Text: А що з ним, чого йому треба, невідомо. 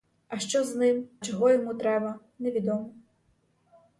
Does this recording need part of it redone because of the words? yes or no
no